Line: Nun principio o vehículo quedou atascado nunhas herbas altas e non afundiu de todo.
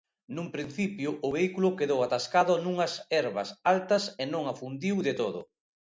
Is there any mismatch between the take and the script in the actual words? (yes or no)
no